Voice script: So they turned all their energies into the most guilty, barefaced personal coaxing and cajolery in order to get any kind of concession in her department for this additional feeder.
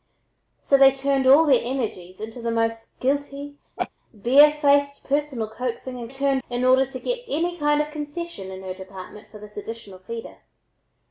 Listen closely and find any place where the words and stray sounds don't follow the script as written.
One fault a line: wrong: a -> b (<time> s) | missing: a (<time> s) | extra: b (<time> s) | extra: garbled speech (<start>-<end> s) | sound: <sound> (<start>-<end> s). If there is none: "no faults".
sound: laugh (3.8-3.9 s)
wrong: cajolery -> turned (6.1 s)